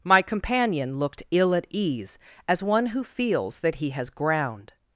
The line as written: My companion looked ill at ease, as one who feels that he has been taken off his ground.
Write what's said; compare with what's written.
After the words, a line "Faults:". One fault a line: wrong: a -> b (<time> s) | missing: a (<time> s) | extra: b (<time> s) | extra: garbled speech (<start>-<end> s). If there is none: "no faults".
My companion looked ill at ease, as one who feels that he has ground.
Faults:
missing: been taken off his (4.1 s)